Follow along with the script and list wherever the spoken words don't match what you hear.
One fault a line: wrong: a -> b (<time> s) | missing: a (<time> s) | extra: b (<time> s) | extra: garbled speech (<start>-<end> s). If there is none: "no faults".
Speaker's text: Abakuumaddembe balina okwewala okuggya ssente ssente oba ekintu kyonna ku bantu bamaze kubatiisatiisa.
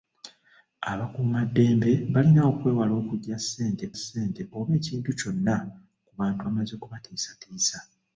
no faults